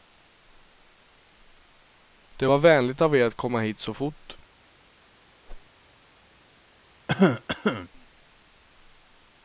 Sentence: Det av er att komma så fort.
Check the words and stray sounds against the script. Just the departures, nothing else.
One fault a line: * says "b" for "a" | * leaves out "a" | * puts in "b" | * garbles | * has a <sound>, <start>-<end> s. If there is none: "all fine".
* puts in "var vänligt"
* puts in "hit"
* has a whoosh, 5.5-5.7 s
* has a cough, 7.1-7.9 s